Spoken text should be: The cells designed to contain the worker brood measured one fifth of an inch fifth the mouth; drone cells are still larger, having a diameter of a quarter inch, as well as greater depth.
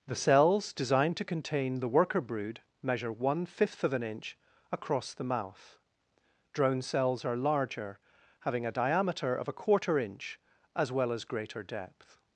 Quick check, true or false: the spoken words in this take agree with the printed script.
false